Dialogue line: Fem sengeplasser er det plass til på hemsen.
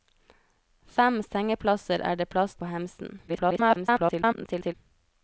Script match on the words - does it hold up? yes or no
no